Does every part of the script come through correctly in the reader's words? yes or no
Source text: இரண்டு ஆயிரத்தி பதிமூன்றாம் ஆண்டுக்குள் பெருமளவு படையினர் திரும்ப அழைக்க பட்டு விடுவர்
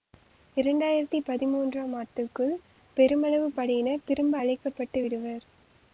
yes